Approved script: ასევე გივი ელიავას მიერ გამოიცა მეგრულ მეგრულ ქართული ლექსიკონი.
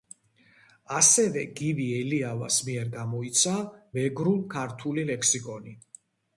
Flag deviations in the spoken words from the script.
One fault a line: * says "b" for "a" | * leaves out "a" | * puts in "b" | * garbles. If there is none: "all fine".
* leaves out "მეგრულ"